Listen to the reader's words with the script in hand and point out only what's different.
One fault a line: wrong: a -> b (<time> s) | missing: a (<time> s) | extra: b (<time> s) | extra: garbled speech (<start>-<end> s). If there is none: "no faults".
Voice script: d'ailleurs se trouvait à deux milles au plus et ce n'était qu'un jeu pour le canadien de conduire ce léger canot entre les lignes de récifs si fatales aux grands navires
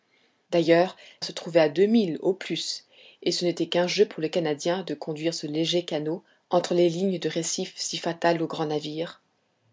no faults